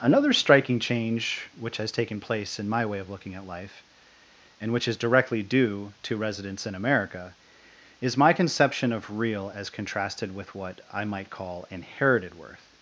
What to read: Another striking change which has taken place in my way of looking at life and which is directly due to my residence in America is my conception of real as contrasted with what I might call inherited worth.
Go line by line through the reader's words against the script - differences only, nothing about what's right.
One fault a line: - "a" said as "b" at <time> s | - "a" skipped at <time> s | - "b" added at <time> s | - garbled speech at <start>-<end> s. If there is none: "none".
- "my" skipped at 6.2 s